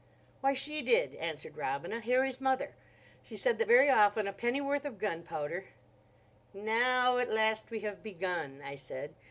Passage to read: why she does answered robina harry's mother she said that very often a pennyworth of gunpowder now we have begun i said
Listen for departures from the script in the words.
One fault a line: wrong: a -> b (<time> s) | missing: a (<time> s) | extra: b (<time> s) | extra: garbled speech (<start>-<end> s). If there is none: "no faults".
wrong: does -> did (0.8 s)
extra: at last (7.2 s)